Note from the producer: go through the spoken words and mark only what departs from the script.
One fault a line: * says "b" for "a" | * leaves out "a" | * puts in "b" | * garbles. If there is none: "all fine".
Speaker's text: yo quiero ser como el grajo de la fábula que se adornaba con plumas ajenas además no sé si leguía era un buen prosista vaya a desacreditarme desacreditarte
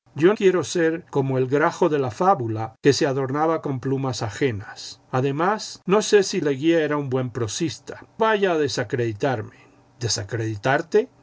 all fine